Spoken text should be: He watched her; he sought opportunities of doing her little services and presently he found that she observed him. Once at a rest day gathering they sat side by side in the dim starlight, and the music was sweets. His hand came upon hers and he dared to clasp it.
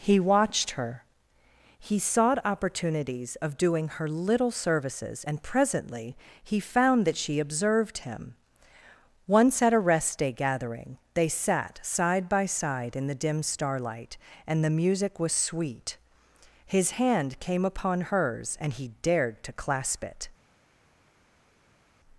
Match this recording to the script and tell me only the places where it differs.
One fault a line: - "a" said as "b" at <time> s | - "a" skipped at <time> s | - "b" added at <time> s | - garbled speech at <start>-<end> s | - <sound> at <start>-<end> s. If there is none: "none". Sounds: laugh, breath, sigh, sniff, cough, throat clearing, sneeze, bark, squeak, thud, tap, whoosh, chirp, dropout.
- "sweets" said as "sweet" at 15.3 s